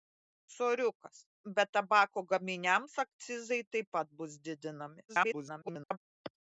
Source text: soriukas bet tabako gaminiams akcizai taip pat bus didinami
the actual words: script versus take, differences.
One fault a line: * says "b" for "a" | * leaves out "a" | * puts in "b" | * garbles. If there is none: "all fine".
* garbles